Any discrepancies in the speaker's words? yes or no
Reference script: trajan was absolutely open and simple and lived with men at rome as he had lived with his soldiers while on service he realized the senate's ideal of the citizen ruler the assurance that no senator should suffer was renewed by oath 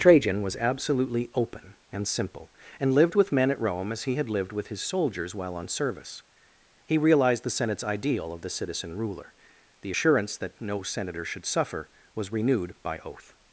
no